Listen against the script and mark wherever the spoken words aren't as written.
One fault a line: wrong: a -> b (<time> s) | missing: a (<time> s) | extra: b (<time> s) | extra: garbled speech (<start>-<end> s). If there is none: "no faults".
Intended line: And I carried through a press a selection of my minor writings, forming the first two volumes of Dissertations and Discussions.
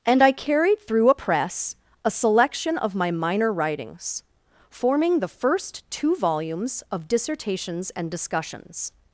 no faults